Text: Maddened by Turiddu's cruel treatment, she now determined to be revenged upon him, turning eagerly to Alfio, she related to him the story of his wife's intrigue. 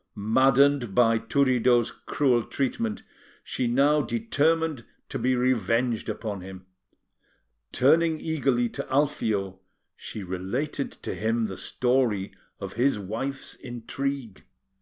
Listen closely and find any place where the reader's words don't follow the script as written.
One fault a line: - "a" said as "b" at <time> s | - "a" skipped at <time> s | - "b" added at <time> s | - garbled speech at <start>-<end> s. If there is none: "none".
none